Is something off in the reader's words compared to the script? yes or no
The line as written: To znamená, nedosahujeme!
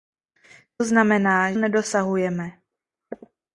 no